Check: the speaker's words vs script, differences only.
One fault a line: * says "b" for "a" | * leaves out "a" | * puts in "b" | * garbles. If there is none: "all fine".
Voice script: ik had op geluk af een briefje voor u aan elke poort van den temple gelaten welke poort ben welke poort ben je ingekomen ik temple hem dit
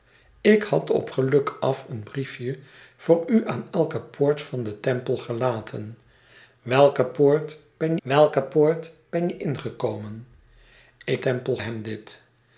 all fine